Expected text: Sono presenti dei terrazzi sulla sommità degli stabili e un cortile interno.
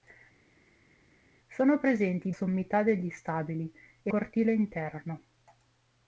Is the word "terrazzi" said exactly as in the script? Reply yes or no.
no